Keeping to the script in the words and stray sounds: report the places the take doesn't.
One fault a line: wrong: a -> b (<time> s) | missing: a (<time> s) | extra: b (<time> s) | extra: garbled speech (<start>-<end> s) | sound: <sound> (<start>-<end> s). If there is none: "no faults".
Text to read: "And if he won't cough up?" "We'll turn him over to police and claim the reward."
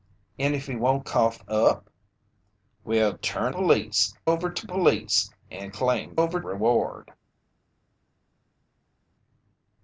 wrong: him -> police (3.5 s)
wrong: the -> over (6.1 s)